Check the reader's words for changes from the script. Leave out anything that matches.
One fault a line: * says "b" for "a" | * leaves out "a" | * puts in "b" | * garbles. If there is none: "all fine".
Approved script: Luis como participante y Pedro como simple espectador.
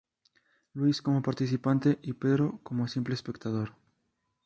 all fine